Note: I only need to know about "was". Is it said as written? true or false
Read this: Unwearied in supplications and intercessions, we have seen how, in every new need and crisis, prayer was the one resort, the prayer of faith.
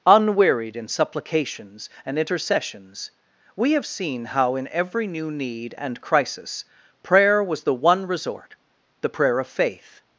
true